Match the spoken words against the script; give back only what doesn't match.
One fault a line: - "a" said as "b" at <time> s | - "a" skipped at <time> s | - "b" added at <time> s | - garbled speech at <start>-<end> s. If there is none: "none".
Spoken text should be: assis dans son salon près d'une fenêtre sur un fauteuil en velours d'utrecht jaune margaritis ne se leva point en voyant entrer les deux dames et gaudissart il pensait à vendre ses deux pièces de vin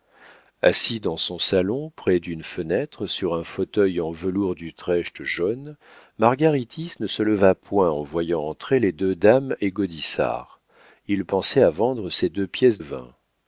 - "de" skipped at 12.8 s